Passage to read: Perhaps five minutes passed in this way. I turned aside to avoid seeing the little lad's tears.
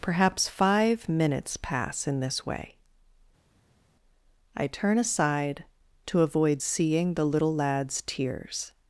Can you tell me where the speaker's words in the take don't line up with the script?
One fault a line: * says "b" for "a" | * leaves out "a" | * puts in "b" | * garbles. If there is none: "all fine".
* says "pass" for "passed"
* says "turn" for "turned"